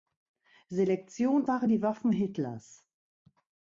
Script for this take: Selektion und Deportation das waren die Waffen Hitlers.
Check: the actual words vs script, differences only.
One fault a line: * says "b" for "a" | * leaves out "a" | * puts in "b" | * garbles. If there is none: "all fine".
* leaves out "und Deportation das"